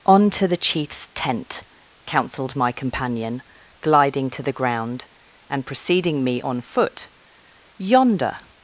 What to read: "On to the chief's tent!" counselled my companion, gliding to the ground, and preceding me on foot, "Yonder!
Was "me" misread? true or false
false